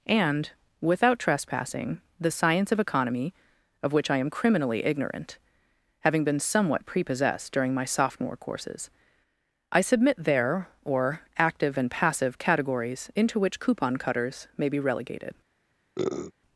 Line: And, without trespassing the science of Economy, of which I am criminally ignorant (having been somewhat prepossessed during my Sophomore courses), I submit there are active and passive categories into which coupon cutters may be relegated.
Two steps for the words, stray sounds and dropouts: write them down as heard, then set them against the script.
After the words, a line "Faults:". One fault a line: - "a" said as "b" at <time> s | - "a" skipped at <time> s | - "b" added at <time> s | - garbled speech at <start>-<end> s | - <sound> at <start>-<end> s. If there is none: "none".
And, without trespassing the science of Economy, of which I am criminally ignorant (having been somewhat prepossessed during my Sophomore courses), I submit there or active and passive categories into which coupon cutters may be relegated.
Faults:
- "are" said as "or" at 10.8 s
- sniff at 16.0-16.3 s